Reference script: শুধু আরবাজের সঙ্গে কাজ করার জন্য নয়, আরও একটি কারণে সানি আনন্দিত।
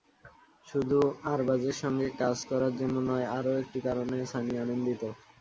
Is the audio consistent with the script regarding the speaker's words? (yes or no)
yes